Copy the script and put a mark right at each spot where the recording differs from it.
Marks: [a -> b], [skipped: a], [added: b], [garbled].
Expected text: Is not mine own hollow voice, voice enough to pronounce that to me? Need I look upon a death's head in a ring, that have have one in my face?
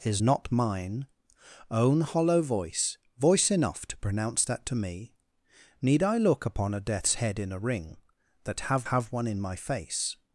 Is not mine own hollow voice, voice enough to pronounce that to me? Need I look upon a death's head in a ring, that have have one in my face?